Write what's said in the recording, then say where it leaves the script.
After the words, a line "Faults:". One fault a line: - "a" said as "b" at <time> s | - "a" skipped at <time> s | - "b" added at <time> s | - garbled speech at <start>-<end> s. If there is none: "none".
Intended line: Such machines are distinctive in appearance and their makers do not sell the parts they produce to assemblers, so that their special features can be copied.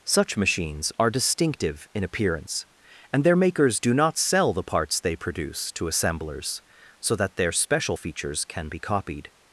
Such machines are distinctive in appearance and their makers do not sell the parts they produce to assemblers, so that their special features can be copied.
Faults:
none